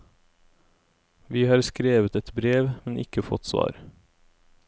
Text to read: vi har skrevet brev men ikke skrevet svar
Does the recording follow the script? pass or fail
fail